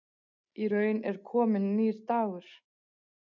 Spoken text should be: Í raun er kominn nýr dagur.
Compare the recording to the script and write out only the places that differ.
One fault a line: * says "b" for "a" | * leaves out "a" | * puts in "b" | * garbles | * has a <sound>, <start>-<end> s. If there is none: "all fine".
all fine